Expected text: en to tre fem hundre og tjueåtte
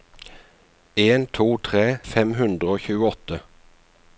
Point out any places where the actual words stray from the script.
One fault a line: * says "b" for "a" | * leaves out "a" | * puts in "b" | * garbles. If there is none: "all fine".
all fine